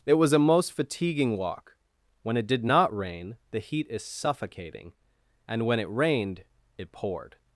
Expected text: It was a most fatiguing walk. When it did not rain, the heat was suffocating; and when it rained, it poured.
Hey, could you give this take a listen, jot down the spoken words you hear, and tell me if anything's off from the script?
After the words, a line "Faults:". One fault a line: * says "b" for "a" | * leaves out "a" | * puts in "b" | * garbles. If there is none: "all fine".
It was a most fatiguing walk. When it did not rain, the heat is suffocating; and when it rained, it poured.
Faults:
* says "is" for "was"